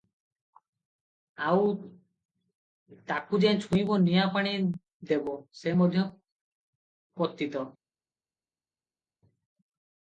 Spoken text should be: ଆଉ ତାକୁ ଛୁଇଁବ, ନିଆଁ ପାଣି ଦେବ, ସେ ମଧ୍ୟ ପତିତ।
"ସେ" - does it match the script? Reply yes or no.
yes